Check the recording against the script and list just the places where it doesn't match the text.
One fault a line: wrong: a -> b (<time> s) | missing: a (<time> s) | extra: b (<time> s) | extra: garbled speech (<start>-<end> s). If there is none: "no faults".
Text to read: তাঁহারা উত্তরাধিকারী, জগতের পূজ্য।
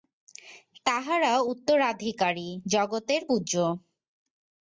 no faults